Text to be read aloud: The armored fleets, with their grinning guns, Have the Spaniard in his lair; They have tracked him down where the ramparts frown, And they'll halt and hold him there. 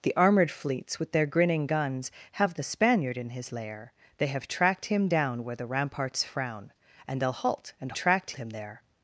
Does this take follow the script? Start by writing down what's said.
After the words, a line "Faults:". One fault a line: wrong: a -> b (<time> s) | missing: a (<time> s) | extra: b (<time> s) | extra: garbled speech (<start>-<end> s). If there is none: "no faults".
The armored fleets, with their grinning guns, Have the Spaniard in his lair; They have tracked him down where the ramparts frown, And they'll halt and tracked him there.
Faults:
wrong: hold -> tracked (7.9 s)